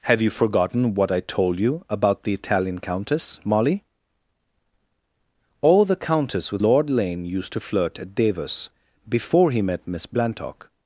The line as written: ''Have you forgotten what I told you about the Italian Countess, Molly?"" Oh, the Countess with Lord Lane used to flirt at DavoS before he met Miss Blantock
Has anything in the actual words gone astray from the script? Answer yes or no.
no